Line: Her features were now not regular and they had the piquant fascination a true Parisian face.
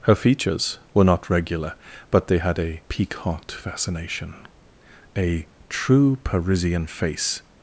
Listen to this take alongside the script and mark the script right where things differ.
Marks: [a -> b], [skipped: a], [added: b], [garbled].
Her features were [skipped: now] not regular [and -> but] they had [the -> a] piquant fascination a true Parisian face.